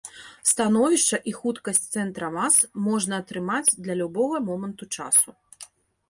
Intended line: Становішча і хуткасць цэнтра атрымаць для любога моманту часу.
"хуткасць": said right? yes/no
yes